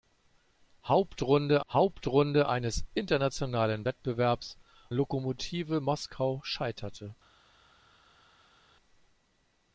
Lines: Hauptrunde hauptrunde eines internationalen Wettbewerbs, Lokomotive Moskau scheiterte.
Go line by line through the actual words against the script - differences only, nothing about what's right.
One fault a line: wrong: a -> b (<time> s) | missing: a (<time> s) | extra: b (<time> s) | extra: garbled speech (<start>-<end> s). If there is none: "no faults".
no faults